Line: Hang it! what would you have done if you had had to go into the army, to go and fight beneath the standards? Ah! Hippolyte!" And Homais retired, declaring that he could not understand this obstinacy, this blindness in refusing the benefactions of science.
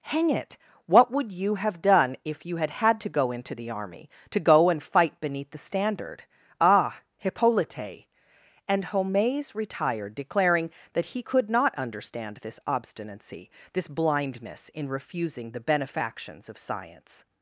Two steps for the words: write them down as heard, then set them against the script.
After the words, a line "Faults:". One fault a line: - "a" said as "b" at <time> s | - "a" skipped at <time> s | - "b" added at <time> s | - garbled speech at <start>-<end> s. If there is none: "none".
Hang it! what would you have done if you had had to go into the army, to go and fight beneath the standard? Ah! Hippolyte!" And Homais retired, declaring that he could not understand this obstinacy, this blindness in refusing the benefactions of science.
Faults:
- "standards" said as "standard" at 5.6 s